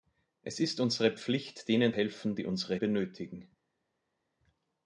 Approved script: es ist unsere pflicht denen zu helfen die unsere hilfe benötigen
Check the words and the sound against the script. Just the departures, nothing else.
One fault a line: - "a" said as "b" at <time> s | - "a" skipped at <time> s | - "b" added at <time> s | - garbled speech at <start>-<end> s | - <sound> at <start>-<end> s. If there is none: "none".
- "zu" skipped at 1.9 s
- "hilfe" skipped at 2.8 s